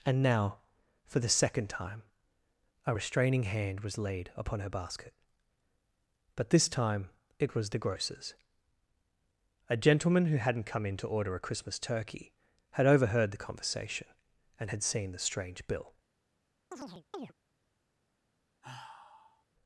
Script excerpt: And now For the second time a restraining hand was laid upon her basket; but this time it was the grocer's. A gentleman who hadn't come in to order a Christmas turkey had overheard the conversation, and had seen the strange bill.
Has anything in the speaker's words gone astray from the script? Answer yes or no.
no